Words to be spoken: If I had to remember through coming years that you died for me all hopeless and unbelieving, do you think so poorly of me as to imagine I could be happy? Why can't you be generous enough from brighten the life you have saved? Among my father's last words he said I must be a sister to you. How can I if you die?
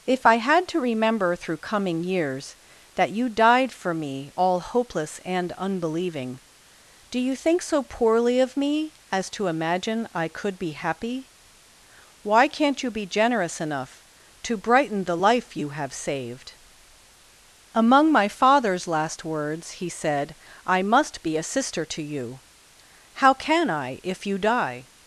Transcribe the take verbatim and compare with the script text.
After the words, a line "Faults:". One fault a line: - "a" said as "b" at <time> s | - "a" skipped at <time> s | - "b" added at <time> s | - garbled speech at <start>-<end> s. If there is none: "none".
If I had to remember through coming years that you died for me all hopeless and unbelieving, do you think so poorly of me as to imagine I could be happy? Why can't you be generous enough to brighten the life you have saved? Among my father's last words he said I must be a sister to you. How can I if you die?
Faults:
- "from" said as "to" at 14.4 s